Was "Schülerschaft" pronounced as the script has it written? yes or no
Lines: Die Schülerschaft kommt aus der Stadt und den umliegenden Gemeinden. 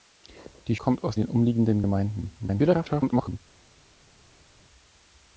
no